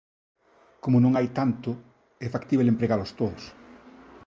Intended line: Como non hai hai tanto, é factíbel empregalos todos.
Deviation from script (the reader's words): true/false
true